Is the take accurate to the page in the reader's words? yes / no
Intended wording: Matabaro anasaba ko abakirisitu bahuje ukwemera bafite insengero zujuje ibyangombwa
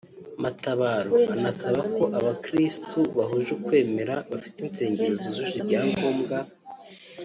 yes